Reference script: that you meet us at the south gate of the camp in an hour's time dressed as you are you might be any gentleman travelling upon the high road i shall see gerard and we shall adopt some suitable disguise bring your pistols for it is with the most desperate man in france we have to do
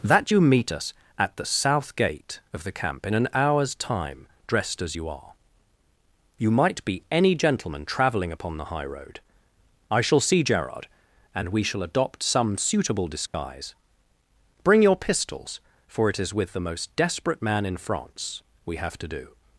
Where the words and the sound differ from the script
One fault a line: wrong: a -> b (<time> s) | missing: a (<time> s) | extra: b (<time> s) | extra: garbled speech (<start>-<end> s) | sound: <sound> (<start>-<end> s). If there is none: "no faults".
sound: dropout (13.3-13.3 s)